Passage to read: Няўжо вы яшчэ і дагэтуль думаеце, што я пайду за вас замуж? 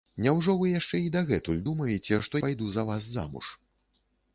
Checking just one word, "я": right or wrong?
wrong